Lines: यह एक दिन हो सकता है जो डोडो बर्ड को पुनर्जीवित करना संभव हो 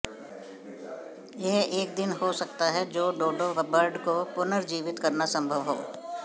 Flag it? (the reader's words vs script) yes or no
no